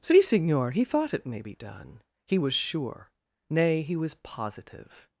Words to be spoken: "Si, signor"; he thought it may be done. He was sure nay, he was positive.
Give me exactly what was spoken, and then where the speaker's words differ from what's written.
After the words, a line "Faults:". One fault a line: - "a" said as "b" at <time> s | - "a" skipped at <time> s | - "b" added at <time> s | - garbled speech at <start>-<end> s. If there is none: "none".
"Si, signor"; he thought it may be done. He was sure nay, he was positive.
Faults:
none